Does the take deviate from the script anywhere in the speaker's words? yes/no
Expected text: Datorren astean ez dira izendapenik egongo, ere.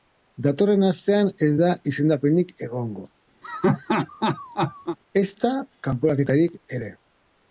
yes